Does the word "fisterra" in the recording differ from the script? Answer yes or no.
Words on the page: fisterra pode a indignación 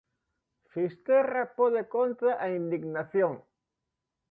no